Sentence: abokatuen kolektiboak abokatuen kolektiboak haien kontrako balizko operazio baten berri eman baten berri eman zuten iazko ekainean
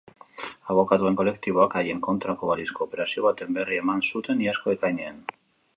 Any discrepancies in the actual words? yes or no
yes